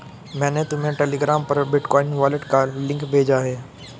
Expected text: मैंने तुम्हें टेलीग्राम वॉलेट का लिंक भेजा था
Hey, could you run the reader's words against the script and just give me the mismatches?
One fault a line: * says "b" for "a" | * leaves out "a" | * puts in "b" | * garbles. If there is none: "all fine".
* puts in "पर बिटकॉइन"
* says "है" for "था"